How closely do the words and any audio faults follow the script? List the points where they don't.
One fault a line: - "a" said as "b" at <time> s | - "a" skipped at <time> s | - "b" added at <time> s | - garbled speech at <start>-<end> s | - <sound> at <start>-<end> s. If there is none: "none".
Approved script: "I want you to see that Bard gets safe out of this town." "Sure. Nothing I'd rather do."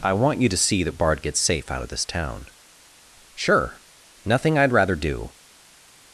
none